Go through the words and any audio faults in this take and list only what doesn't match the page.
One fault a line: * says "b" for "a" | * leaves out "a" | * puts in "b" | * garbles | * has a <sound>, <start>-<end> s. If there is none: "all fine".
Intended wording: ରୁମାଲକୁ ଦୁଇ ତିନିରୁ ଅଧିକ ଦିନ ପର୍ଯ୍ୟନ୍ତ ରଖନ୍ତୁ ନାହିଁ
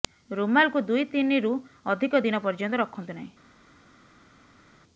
all fine